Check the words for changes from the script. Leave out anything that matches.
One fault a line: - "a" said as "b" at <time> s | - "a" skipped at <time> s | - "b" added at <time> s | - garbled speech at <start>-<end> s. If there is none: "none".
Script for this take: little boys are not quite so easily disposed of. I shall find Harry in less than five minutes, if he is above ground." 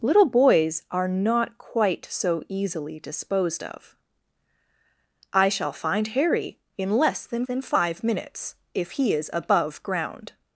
- "than" added at 7.4 s